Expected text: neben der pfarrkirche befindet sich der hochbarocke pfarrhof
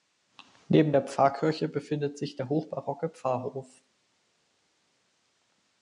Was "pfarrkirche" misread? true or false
false